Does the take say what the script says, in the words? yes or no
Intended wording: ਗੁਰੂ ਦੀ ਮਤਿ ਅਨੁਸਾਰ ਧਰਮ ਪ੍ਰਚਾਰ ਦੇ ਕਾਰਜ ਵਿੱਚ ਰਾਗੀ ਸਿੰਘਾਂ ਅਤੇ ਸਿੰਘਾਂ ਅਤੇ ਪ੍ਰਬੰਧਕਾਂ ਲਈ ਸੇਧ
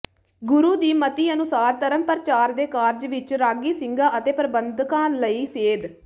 no